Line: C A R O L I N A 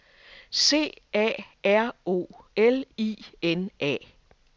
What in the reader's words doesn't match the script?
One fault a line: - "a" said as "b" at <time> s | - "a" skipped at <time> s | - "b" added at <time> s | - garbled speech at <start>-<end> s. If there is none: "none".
none